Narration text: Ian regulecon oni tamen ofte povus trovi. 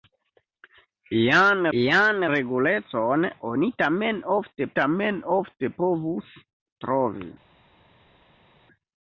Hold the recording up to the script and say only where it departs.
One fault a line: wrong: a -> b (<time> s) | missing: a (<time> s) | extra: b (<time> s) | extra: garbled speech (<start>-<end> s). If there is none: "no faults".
extra: ian (1.8 s)
extra: tamen ofte (4.8 s)